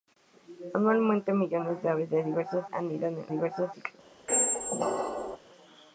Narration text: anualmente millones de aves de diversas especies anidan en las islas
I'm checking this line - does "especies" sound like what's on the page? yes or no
no